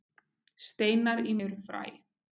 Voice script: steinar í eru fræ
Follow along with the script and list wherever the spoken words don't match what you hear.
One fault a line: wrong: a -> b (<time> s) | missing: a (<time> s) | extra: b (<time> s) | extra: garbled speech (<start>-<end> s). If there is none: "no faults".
no faults